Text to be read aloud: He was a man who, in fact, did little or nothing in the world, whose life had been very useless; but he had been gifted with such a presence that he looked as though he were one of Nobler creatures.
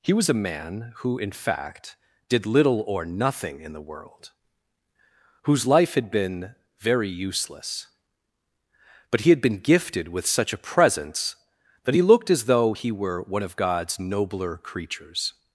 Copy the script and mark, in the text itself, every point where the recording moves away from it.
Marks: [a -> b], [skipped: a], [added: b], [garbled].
He was a man who, in fact, did little or nothing in the world, whose life had been very useless; but he had been gifted with such a presence that he looked as though he were one of [added: God's] Nobler creatures.